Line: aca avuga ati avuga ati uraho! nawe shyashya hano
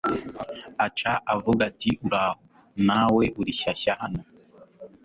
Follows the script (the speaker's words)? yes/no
no